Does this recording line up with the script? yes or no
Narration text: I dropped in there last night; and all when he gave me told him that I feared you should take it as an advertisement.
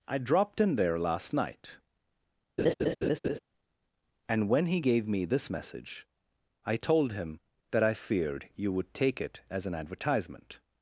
no